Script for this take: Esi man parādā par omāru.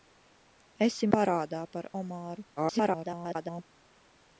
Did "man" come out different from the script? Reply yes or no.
yes